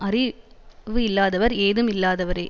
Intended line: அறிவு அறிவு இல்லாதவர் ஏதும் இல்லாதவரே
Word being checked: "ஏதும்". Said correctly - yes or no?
yes